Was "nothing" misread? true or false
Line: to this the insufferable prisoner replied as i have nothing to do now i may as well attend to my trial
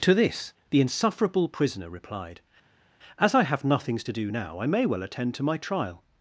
true